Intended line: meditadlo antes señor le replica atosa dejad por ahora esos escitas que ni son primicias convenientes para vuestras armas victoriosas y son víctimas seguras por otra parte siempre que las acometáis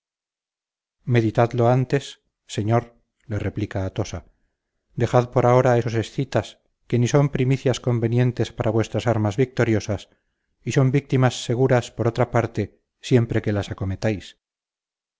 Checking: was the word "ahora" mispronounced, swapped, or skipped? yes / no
no